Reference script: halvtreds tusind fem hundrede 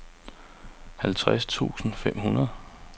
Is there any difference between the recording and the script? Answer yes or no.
no